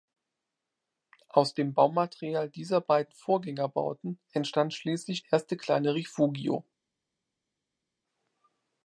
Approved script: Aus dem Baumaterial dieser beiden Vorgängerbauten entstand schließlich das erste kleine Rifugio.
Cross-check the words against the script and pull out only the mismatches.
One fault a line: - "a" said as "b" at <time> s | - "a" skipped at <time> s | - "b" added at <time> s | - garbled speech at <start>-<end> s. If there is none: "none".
- "das" skipped at 5.2 s